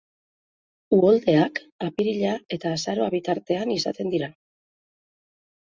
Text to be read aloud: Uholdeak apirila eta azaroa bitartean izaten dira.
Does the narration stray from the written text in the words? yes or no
no